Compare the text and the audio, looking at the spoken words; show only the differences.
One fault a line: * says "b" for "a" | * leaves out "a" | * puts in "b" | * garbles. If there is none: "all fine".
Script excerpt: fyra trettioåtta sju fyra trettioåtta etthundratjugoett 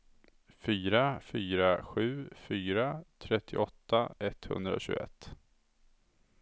* says "fyra" for "trettioåtta"